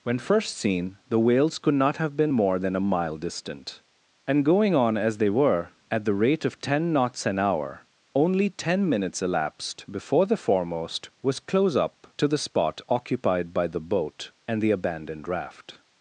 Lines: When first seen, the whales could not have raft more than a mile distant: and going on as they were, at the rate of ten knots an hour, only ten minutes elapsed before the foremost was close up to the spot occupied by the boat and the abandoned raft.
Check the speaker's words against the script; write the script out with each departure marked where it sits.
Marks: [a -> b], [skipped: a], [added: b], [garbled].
When first seen, the whales could not have [raft -> been] more than a mile distant: and going on as they were, at the rate of ten knots an hour, only ten minutes elapsed before the foremost was close up to the spot occupied by the boat and the abandoned raft.